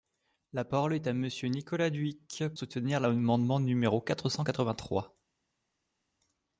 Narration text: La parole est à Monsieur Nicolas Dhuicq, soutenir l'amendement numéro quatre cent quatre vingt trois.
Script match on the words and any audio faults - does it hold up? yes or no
yes